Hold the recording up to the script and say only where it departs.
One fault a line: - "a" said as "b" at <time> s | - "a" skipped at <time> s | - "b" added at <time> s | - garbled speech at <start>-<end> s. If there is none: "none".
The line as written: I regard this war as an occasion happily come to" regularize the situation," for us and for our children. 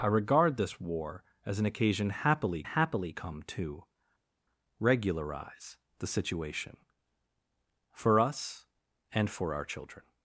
- "happily" added at 2.6 s